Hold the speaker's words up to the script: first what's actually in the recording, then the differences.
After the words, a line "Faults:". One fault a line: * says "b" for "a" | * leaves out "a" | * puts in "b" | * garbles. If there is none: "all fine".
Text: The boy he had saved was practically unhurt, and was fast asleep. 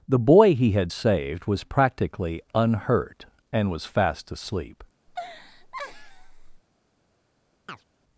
The boy he had saved was practically unhurt, and was fast asleep.
Faults:
all fine